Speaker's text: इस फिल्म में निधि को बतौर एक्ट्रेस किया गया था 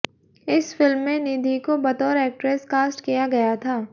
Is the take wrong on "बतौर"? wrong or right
right